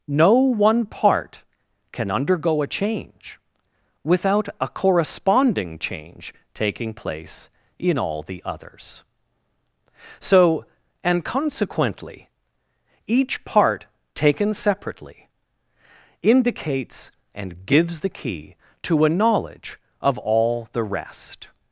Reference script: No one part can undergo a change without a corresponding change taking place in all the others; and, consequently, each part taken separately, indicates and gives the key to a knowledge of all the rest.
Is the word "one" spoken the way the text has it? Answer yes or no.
yes